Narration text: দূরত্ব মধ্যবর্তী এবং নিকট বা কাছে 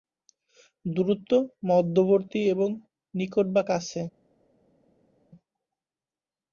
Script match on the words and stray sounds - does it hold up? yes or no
yes